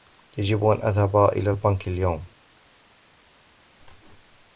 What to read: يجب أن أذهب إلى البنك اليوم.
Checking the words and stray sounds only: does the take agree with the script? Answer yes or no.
yes